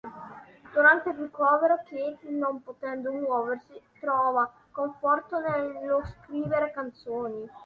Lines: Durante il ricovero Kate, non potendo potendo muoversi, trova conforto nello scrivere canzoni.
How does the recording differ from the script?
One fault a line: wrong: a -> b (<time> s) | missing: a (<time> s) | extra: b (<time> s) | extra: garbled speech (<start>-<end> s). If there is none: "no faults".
missing: potendo (3.1 s)